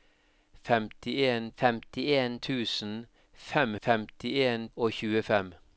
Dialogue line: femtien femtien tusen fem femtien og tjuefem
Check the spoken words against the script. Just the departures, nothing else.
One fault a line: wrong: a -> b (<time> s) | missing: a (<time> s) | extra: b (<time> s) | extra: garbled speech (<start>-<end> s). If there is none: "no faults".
no faults